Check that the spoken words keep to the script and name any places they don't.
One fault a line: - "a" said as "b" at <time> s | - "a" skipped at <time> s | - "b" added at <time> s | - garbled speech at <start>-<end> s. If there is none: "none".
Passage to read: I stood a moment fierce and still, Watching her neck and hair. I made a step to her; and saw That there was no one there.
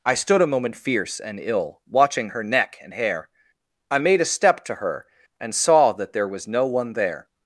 - "still" said as "ill" at 1.4 s